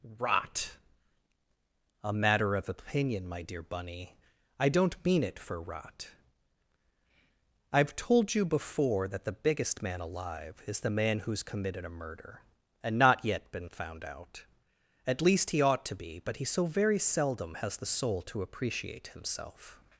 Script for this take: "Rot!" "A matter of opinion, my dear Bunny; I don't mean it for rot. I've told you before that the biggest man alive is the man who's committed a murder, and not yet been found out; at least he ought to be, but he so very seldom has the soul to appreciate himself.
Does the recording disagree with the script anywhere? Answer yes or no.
no